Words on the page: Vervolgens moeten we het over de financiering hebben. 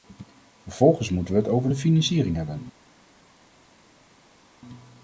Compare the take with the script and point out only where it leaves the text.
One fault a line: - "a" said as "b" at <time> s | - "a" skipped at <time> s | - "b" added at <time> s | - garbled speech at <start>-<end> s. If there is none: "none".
none